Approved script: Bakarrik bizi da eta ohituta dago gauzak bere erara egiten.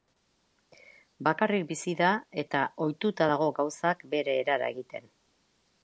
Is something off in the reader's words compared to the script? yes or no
no